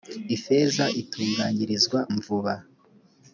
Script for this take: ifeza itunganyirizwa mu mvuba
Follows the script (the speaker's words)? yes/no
no